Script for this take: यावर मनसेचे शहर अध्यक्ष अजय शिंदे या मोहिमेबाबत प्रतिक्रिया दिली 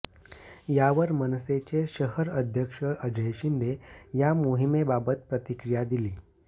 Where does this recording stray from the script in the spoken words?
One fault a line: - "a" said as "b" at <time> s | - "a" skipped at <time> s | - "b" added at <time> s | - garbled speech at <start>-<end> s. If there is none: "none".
none